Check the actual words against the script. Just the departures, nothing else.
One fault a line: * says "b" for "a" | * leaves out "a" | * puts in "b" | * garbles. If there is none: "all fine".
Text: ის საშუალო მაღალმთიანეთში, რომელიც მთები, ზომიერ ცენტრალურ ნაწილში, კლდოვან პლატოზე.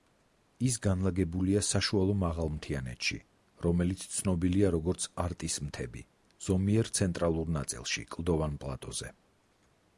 * puts in "განლაგებულია"
* puts in "ცნობილია როგორც არტის"